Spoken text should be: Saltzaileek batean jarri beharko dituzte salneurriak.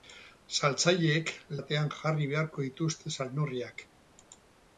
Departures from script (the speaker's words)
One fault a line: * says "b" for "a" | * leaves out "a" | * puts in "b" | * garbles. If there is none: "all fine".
all fine